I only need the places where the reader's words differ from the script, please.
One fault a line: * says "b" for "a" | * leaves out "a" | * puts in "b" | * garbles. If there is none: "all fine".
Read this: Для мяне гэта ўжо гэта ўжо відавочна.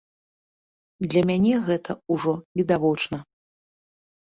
* leaves out "гэта ўжо"